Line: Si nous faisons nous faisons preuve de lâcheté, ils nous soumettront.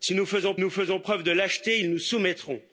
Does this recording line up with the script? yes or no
yes